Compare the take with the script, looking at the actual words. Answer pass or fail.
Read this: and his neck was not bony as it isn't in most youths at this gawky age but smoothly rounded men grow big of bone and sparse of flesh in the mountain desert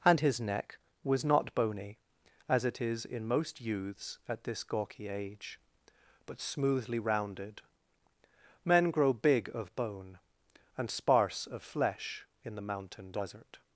fail